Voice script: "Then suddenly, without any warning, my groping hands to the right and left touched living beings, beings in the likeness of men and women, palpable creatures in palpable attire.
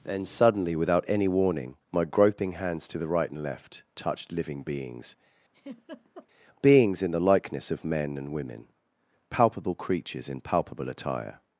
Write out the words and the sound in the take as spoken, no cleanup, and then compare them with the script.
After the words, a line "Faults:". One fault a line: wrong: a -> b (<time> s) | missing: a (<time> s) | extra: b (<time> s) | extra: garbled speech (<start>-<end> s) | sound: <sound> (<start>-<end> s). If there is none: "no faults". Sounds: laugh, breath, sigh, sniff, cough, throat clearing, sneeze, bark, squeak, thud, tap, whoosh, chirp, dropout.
"Then suddenly, without any warning, my groping hands to the right and left touched living beings, beings in the likeness of men and women, palpable creatures in palpable attire.
Faults:
sound: laugh (5.5-6.3 s)